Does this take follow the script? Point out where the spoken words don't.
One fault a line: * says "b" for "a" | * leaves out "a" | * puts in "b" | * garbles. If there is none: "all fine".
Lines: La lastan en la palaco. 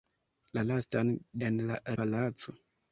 all fine